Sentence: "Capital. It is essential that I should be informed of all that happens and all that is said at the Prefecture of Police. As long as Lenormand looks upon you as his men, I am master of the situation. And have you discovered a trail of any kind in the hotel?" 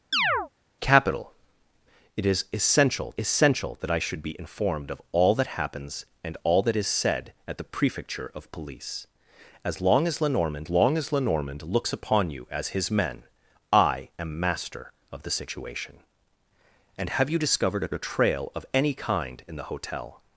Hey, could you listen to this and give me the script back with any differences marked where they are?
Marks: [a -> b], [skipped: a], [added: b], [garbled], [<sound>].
[chirp] "Capital. It is essential [added: essential] that I should be informed of all that happens and all that is said at the Prefecture of Police. As long as Lenormand [added: long as Lenormand] looks upon you as his men, I am master of the situation. And have you discovered a [added: a] trail of any kind in the hotel?"